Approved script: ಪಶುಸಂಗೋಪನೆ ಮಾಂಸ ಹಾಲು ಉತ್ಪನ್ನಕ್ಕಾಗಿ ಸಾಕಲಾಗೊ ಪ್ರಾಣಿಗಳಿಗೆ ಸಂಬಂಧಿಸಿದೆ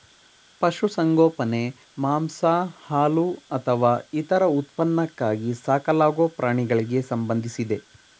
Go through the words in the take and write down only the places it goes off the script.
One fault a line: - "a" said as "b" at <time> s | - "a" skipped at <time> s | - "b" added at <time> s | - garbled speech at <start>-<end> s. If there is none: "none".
- "ಅಥವಾ ಇತರ" added at 3.6 s